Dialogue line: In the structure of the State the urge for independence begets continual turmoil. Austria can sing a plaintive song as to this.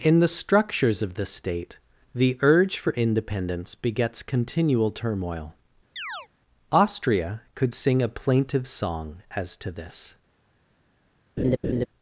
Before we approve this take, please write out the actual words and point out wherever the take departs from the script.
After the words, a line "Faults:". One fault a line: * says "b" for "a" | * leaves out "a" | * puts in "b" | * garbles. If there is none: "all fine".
In the structures of the State the urge for independence begets continual turmoil. Austria could sing a plaintive song as to this.
Faults:
* says "structures" for "structure"
* says "could" for "can"